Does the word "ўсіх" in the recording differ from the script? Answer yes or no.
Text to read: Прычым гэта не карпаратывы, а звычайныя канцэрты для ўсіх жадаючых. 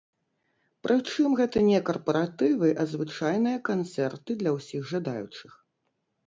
no